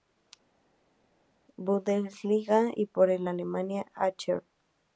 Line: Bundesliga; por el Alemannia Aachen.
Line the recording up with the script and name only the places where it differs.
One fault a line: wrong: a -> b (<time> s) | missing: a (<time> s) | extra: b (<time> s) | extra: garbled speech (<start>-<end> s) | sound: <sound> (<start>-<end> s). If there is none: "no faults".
extra: y (2.8 s)